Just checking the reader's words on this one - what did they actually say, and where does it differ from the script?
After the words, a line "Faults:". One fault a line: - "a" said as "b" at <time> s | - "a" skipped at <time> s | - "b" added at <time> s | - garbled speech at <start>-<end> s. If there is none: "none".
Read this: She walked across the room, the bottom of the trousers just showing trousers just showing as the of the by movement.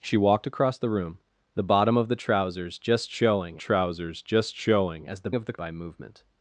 She walked across the room, the bottom of the trousers just showing trousers just showing as the of the by movement.
Faults:
none